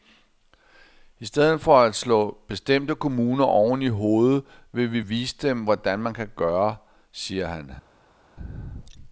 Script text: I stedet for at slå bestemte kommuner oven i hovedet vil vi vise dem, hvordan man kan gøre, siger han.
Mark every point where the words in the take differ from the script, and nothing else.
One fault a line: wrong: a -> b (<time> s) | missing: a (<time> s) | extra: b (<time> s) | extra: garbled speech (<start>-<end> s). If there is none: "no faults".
no faults